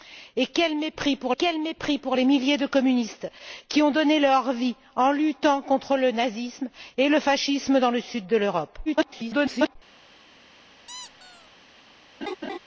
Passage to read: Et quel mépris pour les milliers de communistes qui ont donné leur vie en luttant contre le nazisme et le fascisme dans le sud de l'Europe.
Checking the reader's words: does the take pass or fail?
fail